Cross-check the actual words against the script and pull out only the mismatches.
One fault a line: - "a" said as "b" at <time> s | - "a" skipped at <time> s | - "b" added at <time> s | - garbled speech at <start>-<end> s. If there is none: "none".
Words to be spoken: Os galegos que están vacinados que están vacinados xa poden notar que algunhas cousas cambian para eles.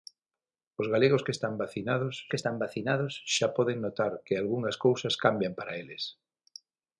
none